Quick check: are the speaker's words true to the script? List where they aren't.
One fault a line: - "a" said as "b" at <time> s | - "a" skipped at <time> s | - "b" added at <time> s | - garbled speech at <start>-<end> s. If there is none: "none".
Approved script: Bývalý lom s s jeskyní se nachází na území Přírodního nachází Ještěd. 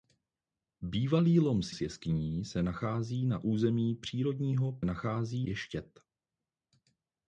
none